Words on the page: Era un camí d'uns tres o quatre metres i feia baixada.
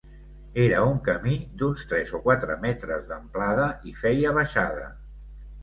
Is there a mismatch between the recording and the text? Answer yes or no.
yes